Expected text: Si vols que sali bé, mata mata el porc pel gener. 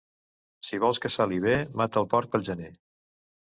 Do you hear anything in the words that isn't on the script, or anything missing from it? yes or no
yes